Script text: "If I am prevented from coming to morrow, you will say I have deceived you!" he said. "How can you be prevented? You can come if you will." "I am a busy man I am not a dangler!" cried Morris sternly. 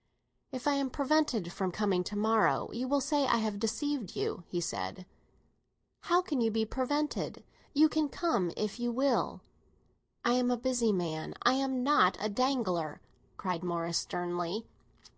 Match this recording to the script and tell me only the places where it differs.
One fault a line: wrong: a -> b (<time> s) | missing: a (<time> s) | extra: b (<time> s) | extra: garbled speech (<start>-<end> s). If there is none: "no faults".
no faults